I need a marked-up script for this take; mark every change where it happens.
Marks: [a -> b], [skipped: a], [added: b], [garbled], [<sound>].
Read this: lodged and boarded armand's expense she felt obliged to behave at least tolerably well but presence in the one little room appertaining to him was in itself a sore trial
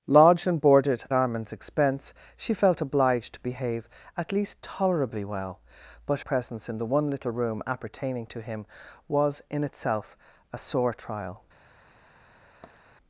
lodged and boarded armand's expense she felt obliged to behave at least tolerably well but presence in the one little room appertaining to him was in itself a sore trial [tap]